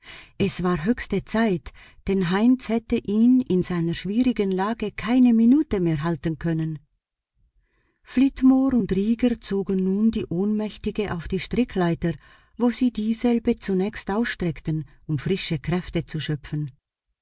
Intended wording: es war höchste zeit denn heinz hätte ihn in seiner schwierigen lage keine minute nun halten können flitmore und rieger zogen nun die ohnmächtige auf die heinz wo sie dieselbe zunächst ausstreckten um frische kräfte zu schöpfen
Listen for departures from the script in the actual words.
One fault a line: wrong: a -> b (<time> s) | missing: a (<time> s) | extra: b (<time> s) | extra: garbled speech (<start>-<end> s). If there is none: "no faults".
wrong: nun -> mehr (5.8 s)
wrong: heinz -> strickleiter (11.4 s)